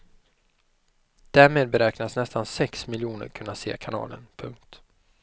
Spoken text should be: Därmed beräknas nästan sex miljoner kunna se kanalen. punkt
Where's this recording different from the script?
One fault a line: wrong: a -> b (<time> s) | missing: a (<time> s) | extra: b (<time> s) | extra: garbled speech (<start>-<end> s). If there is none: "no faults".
no faults